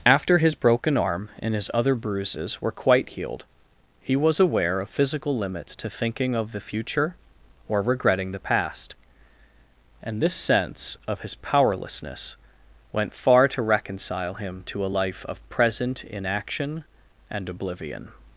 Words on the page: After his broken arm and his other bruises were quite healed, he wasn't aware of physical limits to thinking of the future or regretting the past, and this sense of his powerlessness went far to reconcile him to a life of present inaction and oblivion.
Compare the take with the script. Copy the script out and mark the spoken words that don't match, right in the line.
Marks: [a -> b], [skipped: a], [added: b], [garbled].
After his broken arm and his other bruises were quite healed, he [wasn't -> was] aware of physical limits to thinking of the future or regretting the past, and this sense of his powerlessness went far to reconcile him to a life of present inaction and oblivion.